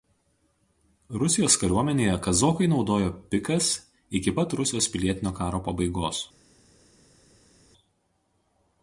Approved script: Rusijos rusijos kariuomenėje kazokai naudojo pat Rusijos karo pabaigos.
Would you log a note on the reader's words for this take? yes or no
yes